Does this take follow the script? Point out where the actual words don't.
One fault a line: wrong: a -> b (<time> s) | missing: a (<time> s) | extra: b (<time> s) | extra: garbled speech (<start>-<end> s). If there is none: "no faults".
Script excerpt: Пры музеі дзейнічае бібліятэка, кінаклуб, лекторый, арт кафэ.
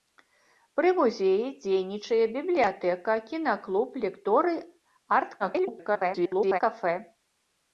extra: garbled speech (5.4-6.6 s)